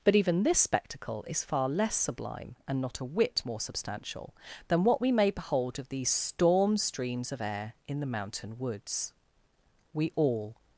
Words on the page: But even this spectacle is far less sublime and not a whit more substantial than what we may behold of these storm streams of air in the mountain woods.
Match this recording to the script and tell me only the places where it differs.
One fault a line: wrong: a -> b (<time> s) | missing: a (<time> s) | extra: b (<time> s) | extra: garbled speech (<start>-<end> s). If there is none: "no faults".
extra: We all (9.9 s)